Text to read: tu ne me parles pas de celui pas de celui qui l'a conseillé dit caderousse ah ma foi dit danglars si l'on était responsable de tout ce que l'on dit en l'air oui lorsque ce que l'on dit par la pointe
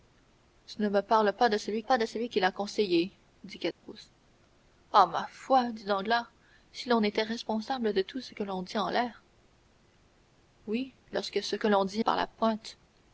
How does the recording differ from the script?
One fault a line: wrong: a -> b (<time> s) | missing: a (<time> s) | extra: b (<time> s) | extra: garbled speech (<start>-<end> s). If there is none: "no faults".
no faults